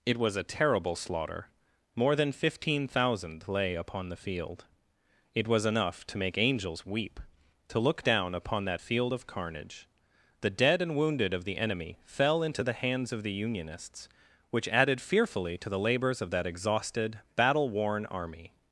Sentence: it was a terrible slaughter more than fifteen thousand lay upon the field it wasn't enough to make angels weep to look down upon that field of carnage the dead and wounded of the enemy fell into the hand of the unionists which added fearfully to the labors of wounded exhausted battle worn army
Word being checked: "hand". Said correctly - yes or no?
no